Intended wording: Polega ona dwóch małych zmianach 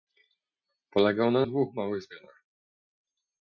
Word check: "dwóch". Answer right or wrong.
right